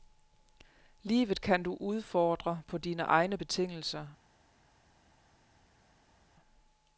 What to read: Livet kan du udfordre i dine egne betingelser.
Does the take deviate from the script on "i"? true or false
true